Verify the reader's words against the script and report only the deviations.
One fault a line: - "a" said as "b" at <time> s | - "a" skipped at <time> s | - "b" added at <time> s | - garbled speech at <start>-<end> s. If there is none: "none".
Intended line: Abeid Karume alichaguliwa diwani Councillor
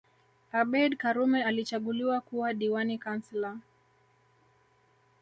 - "kuwa" added at 2.2 s